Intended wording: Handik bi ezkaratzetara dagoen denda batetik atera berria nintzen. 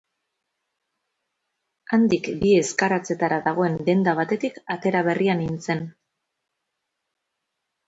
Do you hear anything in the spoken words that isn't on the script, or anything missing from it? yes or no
no